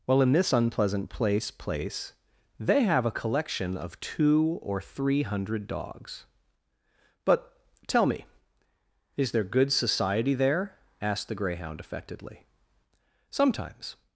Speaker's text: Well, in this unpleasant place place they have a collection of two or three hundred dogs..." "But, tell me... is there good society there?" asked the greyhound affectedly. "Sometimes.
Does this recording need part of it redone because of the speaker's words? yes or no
no